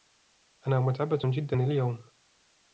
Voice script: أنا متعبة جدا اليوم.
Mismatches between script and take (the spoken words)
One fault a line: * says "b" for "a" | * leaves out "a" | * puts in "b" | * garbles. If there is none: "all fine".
all fine